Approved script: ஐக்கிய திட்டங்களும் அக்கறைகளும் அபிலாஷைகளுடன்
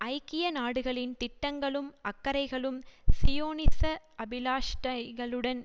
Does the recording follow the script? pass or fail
fail